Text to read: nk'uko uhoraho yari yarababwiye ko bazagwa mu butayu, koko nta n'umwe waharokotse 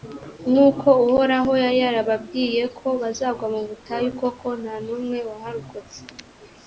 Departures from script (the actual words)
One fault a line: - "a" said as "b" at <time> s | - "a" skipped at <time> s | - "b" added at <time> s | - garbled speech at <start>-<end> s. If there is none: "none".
none